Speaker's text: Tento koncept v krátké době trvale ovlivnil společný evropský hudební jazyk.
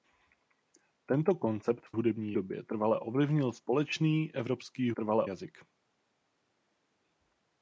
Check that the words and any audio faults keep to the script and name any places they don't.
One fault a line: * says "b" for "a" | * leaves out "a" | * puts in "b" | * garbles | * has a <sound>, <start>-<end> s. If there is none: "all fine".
* says "hudební" for "krátké"
* says "trvale" for "hudební"